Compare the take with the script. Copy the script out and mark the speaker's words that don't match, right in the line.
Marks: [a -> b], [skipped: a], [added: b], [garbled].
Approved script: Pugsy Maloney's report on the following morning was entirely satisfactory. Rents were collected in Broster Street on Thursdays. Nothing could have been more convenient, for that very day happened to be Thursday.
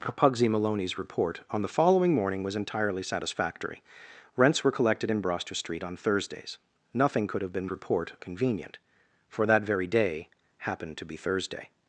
Pugsy Maloney's report on the following morning was entirely satisfactory. Rents were collected in Broster Street on Thursdays. Nothing could have been [more -> report] convenient, for that very day happened to be Thursday.